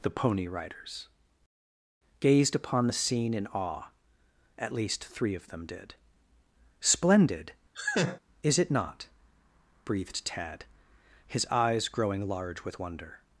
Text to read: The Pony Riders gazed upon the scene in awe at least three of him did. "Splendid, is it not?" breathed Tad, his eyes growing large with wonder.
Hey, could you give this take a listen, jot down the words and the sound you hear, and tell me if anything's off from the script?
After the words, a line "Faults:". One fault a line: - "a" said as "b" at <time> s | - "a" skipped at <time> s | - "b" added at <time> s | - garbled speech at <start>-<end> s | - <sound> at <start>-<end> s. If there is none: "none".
The Pony Riders gazed upon the scene in awe at least three of them did. "Splendid, is it not?" breathed Tad, his eyes growing large with wonder.
Faults:
- "him" said as "them" at 5.5 s
- laugh at 7.7-8.2 s